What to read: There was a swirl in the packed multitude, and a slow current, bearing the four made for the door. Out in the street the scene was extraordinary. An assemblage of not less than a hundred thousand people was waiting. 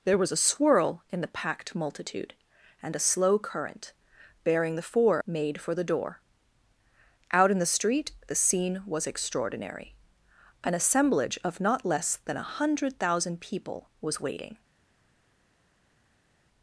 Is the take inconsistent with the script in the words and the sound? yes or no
no